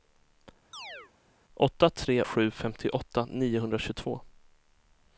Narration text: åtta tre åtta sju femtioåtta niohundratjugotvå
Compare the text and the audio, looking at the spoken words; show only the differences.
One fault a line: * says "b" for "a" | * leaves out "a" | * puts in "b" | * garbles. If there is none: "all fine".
* leaves out "åtta"